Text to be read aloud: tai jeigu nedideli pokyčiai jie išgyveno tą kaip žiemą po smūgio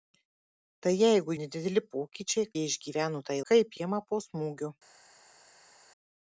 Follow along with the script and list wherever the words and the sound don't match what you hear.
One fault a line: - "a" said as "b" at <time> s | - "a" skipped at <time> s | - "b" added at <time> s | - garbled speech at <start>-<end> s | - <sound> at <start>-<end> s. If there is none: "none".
none